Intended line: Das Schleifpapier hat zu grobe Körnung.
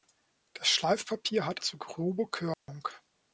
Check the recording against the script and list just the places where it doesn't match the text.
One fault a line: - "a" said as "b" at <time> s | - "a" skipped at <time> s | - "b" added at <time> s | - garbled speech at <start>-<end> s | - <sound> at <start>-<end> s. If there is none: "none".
- dropout at 2.5-2.7 s